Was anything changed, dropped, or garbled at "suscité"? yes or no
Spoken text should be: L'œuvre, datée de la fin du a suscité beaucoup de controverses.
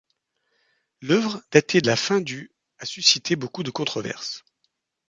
no